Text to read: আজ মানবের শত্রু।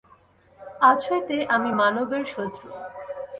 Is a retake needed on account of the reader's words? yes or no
yes